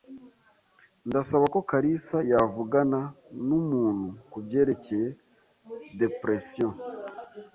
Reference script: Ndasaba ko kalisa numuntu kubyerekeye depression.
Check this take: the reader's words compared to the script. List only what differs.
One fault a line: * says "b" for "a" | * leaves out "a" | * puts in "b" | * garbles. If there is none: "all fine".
* puts in "yavugana"